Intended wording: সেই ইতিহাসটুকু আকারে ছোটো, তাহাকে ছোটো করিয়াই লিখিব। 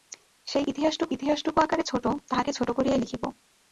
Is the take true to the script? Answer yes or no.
no